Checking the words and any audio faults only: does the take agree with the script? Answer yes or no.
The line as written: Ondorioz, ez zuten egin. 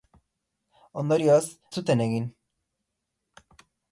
no